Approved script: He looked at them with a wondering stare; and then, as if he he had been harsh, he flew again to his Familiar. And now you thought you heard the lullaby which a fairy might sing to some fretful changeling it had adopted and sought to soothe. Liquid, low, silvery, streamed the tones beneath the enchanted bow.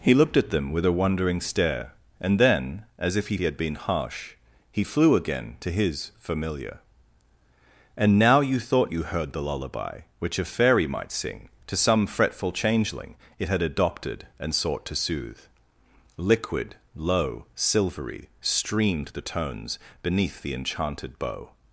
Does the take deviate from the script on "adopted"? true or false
false